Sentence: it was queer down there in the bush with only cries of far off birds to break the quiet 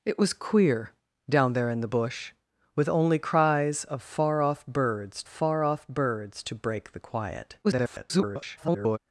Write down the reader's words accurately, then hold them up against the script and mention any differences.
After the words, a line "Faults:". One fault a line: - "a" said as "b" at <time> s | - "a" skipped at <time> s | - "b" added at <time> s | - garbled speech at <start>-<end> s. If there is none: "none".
it was queer down there in the bush with only cries of far off birds far off birds to break the quiet [garbled]
Faults:
- "far off birds" added at 5.3 s
- garbled speech at 7.6-9.0 s